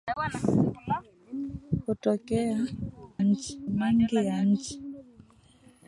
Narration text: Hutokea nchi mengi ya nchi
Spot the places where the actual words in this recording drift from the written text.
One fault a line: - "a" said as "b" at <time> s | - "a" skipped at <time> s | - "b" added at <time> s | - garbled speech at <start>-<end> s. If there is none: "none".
none